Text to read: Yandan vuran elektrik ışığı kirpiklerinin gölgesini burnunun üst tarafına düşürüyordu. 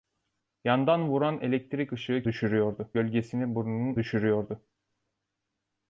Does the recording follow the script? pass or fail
fail